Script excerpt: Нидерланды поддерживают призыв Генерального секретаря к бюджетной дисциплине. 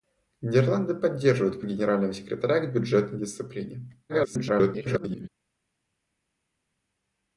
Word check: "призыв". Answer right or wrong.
wrong